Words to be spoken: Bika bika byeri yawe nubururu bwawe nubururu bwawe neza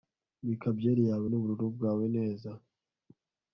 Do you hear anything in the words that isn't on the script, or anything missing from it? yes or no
yes